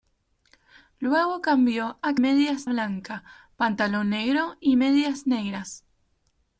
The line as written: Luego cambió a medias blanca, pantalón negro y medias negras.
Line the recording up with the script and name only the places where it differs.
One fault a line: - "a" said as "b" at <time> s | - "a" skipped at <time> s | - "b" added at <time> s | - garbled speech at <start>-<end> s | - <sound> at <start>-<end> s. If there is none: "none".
none